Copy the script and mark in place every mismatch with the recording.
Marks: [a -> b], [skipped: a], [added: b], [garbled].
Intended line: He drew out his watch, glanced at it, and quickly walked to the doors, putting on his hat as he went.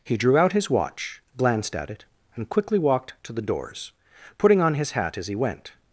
He drew out his watch, glanced at it, and quickly walked to the doors, putting on his hat as he went.